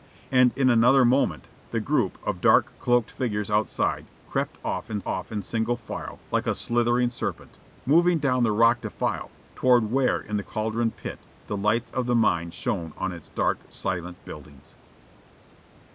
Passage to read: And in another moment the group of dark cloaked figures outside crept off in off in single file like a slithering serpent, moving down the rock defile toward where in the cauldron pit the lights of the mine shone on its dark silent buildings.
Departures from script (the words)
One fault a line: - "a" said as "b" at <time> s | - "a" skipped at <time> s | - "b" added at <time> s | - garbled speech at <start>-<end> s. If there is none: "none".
none